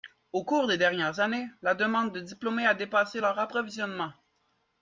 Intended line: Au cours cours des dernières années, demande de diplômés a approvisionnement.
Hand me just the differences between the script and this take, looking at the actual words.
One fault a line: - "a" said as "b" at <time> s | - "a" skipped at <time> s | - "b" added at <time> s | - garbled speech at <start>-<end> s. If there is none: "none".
- "cours" skipped at 0.7 s
- "la" added at 1.6 s
- "dépassé leur" added at 2.7 s